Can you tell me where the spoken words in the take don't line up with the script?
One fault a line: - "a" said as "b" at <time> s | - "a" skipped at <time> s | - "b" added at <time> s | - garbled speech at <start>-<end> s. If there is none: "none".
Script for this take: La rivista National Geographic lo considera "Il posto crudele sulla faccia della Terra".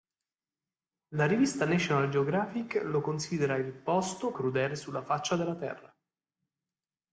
none